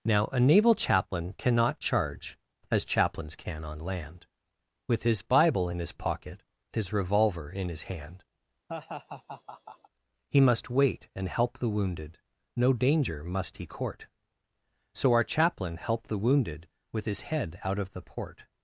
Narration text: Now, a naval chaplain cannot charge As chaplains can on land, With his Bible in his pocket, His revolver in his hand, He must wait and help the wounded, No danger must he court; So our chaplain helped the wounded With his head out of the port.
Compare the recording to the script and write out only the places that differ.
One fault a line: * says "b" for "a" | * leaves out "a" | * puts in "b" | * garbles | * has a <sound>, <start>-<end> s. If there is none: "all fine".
* has a laugh, 8.7-9.9 s